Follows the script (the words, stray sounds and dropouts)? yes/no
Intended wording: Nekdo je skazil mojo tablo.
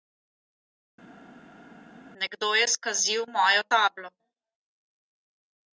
yes